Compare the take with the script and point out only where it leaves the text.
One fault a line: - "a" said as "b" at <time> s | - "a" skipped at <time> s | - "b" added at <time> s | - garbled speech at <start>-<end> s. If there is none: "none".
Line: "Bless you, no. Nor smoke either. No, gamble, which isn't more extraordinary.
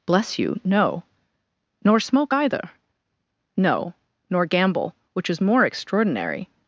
- "nor" added at 4.3 s
- "isn't" said as "is" at 5.3 s